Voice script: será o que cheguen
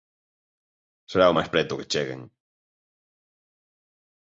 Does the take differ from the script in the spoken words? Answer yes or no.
yes